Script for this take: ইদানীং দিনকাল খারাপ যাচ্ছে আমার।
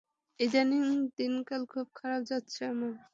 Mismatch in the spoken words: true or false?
true